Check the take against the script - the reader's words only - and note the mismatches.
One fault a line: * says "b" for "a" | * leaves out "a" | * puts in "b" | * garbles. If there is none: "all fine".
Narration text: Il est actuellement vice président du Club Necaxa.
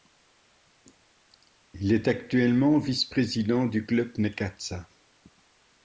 all fine